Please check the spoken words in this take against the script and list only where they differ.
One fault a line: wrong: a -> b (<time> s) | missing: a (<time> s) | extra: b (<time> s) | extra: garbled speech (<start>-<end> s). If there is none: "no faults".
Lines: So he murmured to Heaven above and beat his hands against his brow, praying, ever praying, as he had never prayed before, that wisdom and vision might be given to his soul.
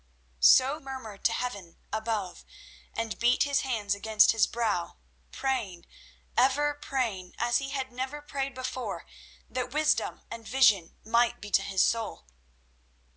missing: he (0.8 s)
missing: given (11.5 s)